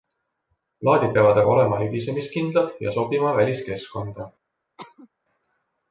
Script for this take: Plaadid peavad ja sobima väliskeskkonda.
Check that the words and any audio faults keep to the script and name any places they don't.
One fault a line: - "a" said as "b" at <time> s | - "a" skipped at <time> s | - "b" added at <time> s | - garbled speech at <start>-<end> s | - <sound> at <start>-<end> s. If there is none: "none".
- "aga olema libisemiskindlad" added at 1.4 s
- cough at 4.8-5.1 s